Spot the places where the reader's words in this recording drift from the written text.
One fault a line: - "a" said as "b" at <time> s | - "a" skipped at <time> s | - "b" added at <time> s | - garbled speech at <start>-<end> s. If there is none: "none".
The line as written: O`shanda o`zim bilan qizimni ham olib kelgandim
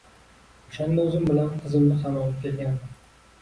none